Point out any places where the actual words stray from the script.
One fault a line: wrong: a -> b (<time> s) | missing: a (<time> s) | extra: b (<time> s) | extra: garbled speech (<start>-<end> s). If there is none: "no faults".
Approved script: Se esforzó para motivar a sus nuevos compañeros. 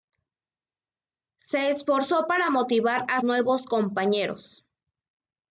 missing: sus (3.2 s)